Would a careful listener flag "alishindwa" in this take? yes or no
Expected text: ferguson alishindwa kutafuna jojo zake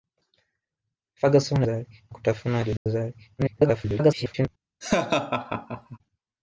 yes